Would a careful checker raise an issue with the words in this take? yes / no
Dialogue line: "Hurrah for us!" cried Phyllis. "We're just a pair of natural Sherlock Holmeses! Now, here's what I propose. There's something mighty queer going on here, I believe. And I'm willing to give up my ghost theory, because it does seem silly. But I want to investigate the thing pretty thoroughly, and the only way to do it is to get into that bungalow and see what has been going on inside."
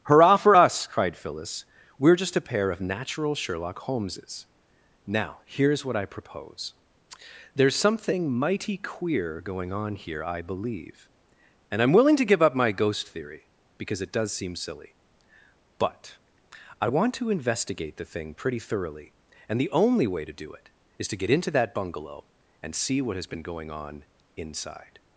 no